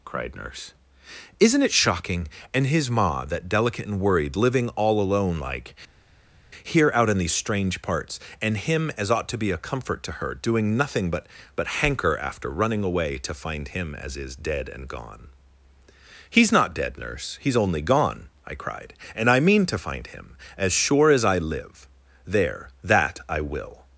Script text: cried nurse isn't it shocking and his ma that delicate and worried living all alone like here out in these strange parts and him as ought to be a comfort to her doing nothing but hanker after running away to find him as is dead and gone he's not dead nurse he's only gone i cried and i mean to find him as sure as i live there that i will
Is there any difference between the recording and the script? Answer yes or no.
yes